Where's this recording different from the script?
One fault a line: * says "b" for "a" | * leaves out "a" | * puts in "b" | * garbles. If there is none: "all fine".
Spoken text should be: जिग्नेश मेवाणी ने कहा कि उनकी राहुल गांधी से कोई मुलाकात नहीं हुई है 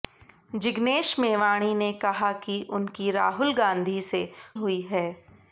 * leaves out "कोई मुलाकात नहीं"